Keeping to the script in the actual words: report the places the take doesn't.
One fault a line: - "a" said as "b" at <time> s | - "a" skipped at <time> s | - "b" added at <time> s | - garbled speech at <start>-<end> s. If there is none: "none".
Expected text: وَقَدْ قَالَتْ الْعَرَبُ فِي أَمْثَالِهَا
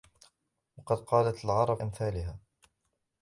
- "فِي" skipped at 1.8 s